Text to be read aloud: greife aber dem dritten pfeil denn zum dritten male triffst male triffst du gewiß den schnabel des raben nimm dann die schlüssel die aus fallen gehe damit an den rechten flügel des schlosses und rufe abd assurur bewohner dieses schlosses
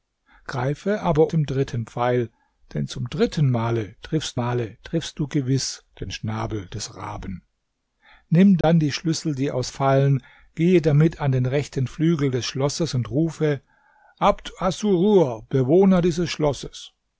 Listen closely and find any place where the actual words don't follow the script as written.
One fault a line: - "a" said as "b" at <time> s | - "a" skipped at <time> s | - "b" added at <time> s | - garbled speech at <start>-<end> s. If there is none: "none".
none